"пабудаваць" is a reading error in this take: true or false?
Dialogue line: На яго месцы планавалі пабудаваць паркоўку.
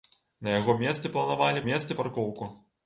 true